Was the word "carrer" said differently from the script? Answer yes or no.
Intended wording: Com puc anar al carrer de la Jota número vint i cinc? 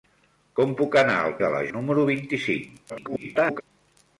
yes